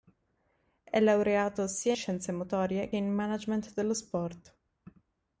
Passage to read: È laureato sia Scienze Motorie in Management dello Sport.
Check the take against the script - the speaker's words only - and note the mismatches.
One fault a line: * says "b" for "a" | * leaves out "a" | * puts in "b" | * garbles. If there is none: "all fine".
all fine